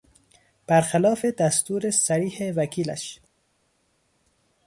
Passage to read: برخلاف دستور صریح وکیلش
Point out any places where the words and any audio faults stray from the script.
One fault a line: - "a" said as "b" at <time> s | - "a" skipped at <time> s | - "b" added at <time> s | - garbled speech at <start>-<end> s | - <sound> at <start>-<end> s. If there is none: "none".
none